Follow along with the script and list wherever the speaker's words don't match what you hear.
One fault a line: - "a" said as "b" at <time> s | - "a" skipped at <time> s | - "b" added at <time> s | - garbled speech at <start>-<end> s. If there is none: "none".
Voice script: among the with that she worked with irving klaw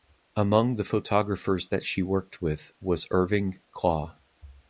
- "with" said as "photographers" at 0.8 s
- "was" added at 2.8 s